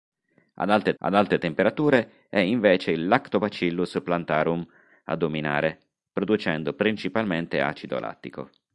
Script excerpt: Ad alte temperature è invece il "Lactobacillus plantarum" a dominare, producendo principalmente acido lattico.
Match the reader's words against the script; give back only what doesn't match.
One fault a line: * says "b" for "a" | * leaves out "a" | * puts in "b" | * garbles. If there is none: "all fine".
* puts in "ad alte"